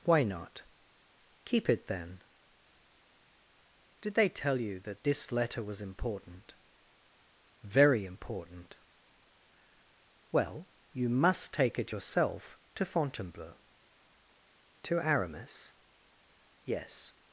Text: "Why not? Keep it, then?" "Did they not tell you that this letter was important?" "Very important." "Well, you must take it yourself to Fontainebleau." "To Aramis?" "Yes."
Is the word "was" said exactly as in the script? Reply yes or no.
yes